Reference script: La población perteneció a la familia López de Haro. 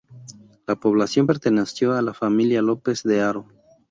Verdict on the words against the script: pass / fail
pass